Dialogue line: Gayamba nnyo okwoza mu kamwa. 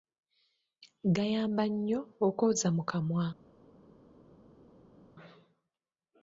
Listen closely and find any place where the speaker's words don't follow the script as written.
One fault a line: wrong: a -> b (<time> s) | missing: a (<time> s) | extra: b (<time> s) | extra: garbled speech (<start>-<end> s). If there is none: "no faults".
no faults